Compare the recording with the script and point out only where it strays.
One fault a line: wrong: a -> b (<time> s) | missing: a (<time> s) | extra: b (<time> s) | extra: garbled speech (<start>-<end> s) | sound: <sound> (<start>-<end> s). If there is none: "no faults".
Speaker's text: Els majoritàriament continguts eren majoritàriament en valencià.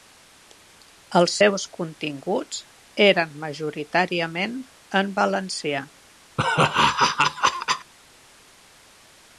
wrong: majoritàriament -> seus (1.4 s)
sound: laugh (6.4-7.9 s)